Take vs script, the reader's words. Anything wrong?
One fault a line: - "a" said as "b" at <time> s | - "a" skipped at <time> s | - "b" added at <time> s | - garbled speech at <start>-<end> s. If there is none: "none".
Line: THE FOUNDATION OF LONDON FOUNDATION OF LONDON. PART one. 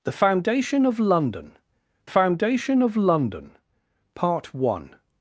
none